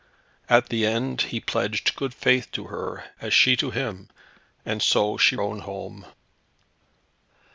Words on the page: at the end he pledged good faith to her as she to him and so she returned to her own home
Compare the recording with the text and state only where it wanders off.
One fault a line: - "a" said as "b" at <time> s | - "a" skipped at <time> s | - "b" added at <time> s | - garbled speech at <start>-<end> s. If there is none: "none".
- "returned to her" skipped at 5.3 s